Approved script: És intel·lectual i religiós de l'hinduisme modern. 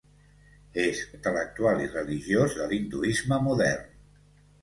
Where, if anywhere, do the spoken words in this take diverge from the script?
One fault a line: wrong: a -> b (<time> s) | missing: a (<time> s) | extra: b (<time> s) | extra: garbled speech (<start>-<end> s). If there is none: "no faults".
no faults